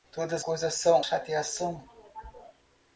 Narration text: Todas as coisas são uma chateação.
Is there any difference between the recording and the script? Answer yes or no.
yes